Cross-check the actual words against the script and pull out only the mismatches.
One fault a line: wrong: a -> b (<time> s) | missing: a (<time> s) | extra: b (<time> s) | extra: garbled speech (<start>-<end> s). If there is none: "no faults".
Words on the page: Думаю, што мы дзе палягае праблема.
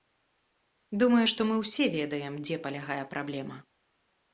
extra: ўсе ведаем (1.6 s)